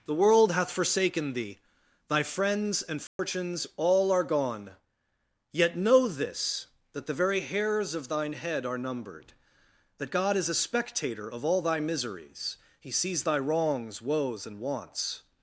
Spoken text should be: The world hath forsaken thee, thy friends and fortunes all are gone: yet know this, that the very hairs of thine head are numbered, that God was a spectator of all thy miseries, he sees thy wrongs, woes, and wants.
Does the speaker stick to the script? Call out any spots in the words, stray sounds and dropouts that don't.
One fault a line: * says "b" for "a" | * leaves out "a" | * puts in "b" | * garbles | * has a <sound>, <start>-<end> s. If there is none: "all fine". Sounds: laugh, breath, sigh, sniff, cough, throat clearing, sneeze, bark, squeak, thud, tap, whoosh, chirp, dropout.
* has a dropout, 3.1-3.2 s
* says "is" for "was"